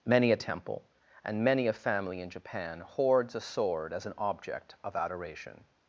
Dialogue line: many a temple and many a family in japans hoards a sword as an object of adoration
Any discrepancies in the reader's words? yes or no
yes